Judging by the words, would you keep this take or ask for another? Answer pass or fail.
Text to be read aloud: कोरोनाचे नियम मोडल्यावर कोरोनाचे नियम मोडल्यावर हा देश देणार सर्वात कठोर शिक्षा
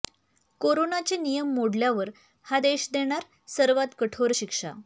fail